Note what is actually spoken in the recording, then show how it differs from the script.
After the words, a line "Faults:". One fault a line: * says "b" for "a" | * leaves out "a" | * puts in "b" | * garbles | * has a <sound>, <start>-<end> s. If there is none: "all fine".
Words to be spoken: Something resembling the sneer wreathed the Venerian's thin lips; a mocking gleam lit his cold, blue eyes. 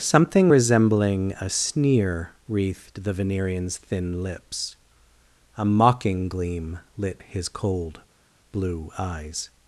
Something resembling a sneer wreathed the Venerian's thin lips; a mocking gleam lit his cold, blue eyes.
Faults:
* says "a" for "the"